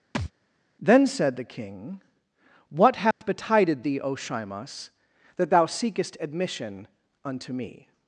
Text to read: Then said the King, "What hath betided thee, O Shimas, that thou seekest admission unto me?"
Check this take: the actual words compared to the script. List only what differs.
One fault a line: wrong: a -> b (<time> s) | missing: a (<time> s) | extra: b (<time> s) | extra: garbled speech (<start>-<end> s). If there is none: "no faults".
no faults